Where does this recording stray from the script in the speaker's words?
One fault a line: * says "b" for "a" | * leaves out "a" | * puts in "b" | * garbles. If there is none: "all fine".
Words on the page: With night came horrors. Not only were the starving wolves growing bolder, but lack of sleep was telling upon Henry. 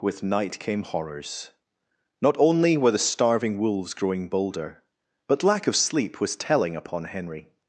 all fine